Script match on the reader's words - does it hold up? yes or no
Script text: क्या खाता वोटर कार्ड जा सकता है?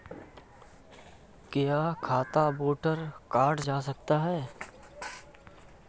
yes